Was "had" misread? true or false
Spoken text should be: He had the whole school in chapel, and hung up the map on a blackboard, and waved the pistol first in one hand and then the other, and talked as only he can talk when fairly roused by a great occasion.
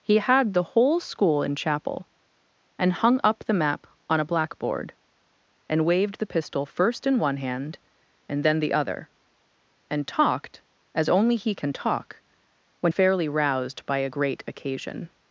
false